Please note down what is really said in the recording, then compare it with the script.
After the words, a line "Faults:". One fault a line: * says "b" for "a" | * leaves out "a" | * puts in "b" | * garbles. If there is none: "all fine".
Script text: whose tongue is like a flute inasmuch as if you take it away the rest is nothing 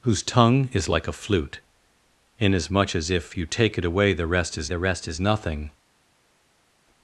whose tongue is like a flute inasmuch as if you take it away the rest is the rest is nothing
Faults:
* puts in "the rest is"